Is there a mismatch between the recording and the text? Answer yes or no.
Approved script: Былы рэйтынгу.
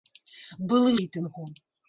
no